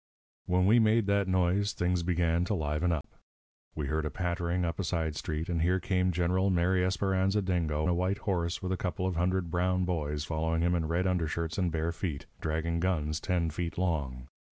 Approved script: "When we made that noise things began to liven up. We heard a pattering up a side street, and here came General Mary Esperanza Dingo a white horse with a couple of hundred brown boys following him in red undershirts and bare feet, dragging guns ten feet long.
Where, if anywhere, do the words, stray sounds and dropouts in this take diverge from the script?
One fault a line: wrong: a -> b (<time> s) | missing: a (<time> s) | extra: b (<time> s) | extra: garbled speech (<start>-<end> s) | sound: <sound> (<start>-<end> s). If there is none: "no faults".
sound: dropout (3.0-3.0 s)